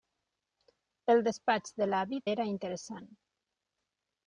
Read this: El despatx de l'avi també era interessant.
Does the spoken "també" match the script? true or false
false